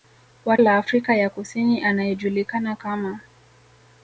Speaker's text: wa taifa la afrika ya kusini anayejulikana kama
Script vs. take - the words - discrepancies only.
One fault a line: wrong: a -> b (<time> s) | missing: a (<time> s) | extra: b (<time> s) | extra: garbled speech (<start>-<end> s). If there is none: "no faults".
missing: taifa (0.6 s)